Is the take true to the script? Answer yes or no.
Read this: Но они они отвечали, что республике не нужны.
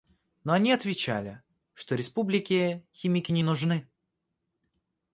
no